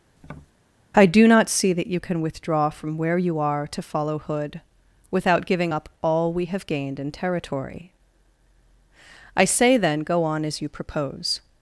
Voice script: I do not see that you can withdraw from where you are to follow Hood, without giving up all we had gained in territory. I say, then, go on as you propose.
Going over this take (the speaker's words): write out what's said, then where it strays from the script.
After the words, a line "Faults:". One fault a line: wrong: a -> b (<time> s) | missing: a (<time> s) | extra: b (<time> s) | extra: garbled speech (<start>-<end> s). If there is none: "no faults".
I do not see that you can withdraw from where you are to follow Hood, without giving up all we have gained in territory. I say, then, go on as you propose.
Faults:
wrong: had -> have (6.4 s)